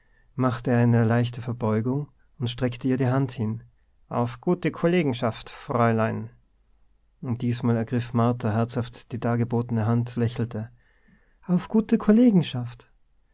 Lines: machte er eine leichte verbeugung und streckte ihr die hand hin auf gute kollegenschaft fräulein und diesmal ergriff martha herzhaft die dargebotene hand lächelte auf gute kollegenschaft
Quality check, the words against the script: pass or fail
pass